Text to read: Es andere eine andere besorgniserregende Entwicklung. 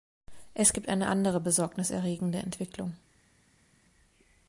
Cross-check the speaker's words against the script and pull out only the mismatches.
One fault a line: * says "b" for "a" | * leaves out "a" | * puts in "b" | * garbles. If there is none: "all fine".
* says "gibt" for "andere"